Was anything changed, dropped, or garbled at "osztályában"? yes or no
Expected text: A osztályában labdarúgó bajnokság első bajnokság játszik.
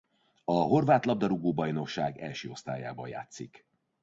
yes